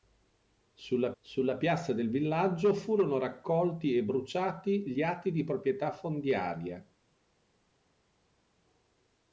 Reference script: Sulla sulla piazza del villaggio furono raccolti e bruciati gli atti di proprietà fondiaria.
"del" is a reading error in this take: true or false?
false